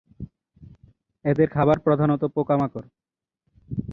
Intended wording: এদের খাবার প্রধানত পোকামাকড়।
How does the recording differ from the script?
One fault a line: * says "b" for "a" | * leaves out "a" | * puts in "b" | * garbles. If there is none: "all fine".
all fine